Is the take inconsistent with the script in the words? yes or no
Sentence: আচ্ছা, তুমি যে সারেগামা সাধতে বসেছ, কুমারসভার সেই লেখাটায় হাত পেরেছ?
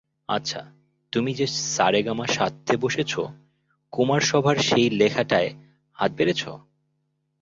no